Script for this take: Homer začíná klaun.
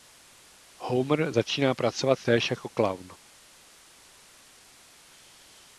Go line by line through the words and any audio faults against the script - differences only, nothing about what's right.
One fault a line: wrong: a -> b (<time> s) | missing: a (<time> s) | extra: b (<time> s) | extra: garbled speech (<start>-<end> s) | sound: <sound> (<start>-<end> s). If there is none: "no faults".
extra: pracovat též jako (1.7 s)